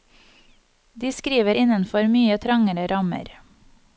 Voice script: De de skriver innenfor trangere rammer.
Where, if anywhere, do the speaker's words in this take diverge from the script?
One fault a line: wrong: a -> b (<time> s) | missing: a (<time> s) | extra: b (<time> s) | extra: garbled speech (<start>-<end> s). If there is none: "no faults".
missing: de (1.1 s)
extra: mye (2.1 s)